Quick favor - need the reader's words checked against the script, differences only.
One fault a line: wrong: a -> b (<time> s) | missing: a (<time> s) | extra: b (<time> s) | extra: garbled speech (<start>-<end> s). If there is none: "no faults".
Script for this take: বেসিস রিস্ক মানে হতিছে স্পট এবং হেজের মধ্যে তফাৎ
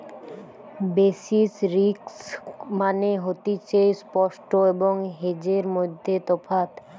no faults